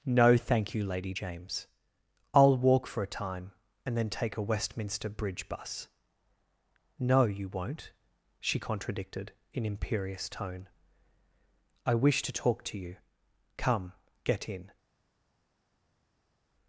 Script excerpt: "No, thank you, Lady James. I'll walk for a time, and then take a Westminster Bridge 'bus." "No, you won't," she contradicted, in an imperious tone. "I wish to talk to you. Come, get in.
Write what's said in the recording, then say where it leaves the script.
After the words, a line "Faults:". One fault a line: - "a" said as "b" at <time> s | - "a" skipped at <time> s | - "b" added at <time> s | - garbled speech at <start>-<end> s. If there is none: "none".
"No, thank you, Lady James. I'll walk for a time, and then take a Westminster Bridge 'bus." "No, you won't," she contradicted, in imperious tone. "I wish to talk to you. Come, get in.
Faults:
- "an" skipped at 9.7 s